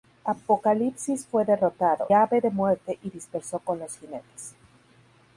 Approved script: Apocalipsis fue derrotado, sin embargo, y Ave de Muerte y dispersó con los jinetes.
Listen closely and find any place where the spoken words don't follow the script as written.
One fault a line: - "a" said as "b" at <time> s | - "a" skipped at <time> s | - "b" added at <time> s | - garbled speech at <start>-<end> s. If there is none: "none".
- "sin embargo y" skipped at 2.1 s